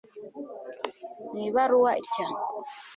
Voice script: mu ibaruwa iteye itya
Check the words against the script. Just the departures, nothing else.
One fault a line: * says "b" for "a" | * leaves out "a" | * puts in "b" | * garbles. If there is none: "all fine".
* leaves out "iteye"